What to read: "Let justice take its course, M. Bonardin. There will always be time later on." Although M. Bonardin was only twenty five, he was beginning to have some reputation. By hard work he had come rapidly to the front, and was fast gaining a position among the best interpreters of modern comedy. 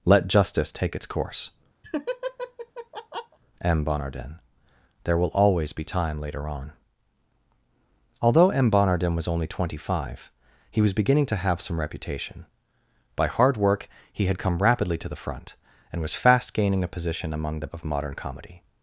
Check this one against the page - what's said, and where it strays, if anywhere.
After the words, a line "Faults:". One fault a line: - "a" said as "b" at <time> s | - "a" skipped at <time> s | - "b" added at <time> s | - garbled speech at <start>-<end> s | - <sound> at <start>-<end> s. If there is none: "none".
"Let justice take its course, M. Bonardin. There will always be time later on." Although M. Bonardin was only twenty five, he was beginning to have some reputation. By hard work he had come rapidly to the front, and was fast gaining a position among the of modern comedy.
Faults:
- laugh at 1.8-3.4 s
- "best interpreters" skipped at 17.7 s